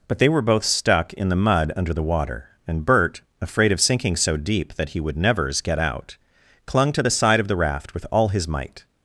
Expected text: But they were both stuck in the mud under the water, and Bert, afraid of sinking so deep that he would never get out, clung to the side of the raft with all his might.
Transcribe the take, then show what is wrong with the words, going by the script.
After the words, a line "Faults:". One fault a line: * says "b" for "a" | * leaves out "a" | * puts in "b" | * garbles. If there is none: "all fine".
But they were both stuck in the mud under the water, and Bert, afraid of sinking so deep that he would nevers get out, clung to the side of the raft with all his might.
Faults:
* says "nevers" for "never"